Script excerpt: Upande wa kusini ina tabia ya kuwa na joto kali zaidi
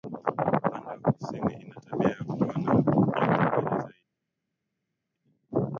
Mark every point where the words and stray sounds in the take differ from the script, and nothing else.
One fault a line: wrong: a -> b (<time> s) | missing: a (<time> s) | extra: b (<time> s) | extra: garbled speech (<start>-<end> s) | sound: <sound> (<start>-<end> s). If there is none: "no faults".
no faults